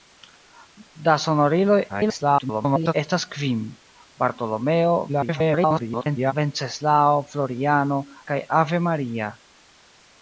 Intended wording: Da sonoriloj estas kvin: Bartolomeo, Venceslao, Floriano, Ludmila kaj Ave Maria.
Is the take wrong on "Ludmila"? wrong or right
wrong